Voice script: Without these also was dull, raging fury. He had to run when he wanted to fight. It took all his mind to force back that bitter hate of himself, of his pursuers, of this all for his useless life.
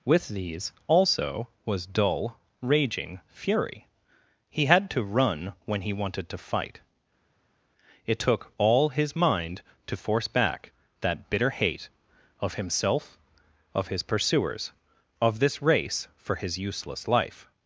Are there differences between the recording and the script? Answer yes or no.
yes